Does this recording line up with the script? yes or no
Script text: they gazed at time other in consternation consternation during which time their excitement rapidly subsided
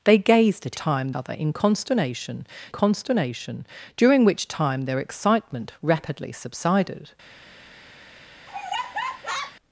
yes